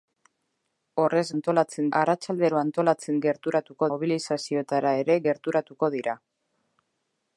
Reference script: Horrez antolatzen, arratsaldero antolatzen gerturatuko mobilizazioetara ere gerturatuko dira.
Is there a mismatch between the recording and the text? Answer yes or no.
no